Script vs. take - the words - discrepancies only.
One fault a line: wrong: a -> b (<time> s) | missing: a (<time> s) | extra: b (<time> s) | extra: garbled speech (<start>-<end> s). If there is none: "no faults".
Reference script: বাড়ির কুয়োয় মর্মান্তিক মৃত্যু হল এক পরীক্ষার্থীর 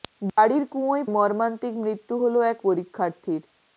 no faults